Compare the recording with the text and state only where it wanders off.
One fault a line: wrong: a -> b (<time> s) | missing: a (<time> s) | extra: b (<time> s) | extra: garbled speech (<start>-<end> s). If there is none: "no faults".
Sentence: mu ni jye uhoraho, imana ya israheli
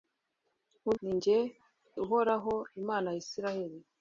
no faults